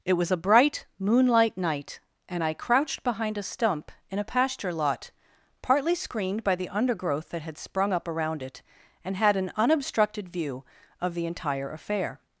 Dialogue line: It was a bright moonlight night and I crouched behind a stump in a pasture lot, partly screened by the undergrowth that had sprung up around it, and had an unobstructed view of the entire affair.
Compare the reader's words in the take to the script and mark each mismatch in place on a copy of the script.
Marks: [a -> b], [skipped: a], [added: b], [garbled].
It was a bright moonlight night and I crouched behind a stump in a pasture lot, partly screened by the undergrowth that had sprung up around it, and had an unobstructed view of the entire affair.